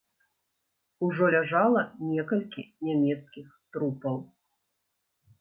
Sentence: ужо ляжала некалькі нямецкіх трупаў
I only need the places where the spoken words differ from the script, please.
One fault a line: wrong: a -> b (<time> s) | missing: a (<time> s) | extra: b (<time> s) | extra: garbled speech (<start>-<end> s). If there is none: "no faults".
no faults